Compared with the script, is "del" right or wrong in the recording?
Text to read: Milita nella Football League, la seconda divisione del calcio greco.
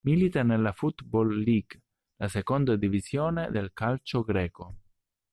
right